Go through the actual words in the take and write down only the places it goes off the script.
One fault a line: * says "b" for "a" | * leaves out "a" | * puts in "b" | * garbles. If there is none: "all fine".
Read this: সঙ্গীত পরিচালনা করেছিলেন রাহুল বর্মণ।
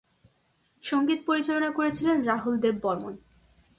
* puts in "দেব"